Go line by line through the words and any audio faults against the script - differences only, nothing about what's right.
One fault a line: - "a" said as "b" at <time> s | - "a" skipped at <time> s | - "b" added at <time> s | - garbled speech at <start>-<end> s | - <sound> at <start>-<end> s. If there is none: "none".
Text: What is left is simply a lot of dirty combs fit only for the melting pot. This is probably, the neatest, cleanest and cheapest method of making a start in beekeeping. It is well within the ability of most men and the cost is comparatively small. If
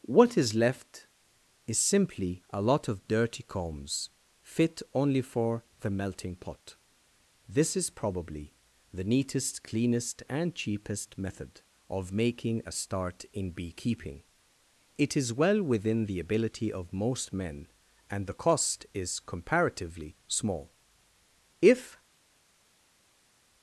none